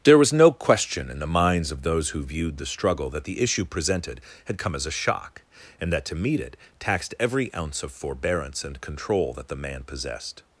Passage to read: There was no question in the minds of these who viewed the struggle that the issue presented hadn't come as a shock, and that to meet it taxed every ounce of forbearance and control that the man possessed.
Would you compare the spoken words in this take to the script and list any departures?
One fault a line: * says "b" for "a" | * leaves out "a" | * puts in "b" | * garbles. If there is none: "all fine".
* says "those" for "these"
* says "had" for "hadn't"